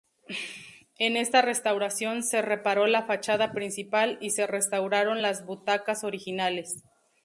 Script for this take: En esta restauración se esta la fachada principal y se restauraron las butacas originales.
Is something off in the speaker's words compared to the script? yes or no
yes